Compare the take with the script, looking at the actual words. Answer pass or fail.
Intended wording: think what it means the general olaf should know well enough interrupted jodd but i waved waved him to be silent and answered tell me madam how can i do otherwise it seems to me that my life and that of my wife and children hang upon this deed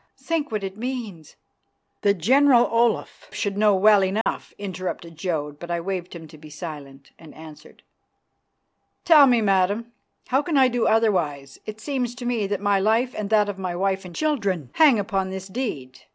fail